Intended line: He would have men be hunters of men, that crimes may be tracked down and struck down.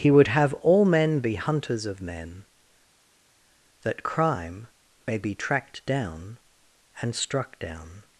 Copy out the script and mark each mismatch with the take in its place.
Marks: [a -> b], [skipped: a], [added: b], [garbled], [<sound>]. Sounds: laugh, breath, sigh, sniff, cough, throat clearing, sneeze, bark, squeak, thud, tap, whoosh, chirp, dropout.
He would have [added: all] men be hunters of men, that [crimes -> crime] may be tracked down and struck down.